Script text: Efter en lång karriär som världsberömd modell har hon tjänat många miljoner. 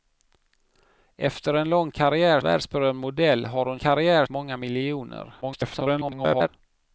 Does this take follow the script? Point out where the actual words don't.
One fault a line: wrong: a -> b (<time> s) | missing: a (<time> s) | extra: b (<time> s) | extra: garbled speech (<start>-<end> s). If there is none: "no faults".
missing: som (2.4 s)
wrong: tjänat -> karriär (3.8 s)
extra: garbled speech (5.4-6.5 s)